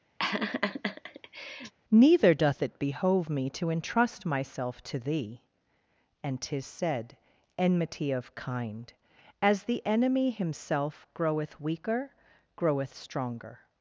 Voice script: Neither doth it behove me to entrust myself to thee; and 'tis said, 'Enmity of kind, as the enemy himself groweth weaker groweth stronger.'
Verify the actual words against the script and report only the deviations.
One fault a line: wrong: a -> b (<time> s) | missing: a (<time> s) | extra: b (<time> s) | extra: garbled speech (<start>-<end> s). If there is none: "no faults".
no faults